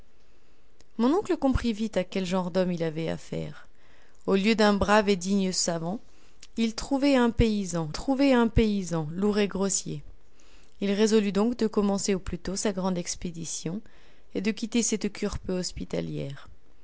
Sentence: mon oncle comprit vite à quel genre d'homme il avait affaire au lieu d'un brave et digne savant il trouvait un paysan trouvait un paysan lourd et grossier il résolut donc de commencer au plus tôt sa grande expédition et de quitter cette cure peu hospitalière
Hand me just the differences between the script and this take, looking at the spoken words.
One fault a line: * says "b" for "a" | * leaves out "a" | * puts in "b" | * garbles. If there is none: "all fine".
all fine